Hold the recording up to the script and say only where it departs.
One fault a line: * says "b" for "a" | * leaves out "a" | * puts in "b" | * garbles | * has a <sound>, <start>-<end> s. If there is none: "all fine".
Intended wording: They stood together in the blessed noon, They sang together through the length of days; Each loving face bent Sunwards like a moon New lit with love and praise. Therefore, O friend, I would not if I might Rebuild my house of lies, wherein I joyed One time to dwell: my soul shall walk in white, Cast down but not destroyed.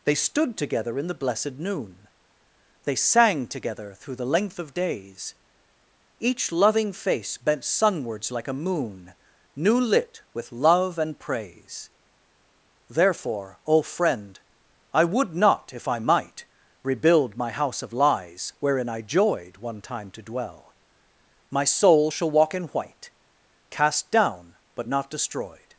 all fine